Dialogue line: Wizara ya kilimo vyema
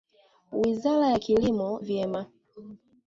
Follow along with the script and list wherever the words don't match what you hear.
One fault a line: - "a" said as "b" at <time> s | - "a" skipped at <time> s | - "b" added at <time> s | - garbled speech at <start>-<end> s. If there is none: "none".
none